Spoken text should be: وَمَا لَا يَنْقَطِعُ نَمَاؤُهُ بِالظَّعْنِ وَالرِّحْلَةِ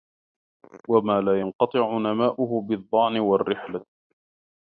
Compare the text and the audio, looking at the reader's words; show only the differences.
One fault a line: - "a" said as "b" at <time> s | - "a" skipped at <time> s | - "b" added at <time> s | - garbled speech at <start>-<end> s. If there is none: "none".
none